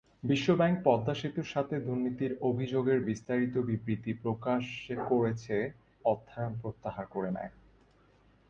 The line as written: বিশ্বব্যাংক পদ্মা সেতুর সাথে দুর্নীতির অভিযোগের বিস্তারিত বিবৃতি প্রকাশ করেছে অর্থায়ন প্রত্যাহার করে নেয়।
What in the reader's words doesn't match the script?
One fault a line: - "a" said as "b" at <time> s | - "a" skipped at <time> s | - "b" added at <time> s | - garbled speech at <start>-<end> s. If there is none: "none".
none